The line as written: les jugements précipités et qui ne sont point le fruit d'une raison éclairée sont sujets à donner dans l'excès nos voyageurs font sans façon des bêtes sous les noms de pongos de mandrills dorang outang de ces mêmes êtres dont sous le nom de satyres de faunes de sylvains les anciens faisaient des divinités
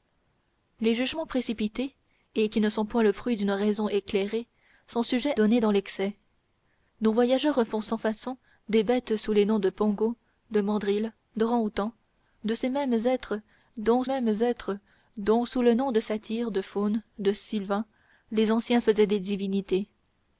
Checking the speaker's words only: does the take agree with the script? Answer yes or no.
no